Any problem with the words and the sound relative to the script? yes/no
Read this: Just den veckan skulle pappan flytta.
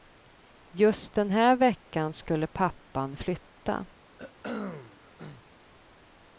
yes